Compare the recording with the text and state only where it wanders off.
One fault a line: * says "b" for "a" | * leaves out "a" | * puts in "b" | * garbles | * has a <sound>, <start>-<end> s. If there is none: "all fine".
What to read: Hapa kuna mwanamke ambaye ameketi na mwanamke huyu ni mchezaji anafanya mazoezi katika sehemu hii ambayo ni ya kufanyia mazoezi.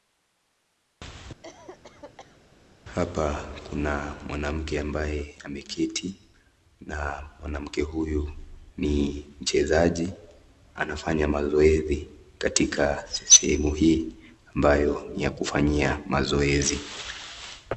* has a cough, 1.4-2.4 s